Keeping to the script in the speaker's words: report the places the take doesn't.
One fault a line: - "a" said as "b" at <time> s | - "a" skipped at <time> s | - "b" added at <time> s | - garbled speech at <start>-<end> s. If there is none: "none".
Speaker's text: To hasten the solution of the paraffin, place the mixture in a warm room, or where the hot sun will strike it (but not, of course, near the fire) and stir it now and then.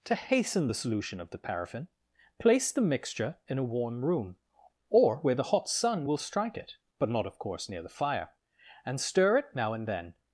none